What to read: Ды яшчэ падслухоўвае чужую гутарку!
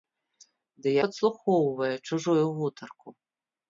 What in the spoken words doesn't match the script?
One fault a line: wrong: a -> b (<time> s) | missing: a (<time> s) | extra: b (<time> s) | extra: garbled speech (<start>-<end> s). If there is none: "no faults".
missing: яшчэ (0.9 s)